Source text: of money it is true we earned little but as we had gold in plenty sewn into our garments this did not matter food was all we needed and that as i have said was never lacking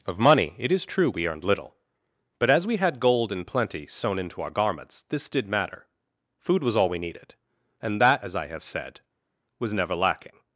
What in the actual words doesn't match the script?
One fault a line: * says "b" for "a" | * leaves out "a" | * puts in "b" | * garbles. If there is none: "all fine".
* leaves out "not"